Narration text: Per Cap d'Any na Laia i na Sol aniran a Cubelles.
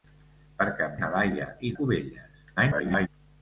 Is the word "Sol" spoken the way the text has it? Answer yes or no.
no